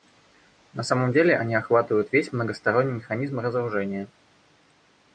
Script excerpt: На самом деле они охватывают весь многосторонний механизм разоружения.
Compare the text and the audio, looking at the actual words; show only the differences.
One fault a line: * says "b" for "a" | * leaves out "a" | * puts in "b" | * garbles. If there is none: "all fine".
all fine